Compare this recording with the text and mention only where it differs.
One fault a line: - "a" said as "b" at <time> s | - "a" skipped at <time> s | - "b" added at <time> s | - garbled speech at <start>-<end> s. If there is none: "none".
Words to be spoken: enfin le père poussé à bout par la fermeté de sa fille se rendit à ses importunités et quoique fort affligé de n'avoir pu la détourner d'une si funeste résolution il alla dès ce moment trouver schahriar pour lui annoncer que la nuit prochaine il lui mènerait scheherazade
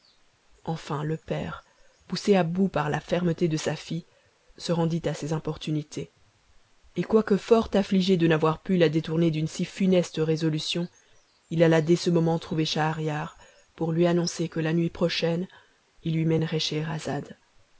none